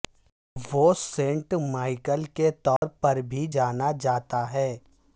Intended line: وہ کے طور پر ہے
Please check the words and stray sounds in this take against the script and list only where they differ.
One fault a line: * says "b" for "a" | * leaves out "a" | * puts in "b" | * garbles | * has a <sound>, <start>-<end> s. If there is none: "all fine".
* puts in "سینٹ مائیکل"
* has a dropout, 2.8-2.8 s
* puts in "بھی جانا جاتا"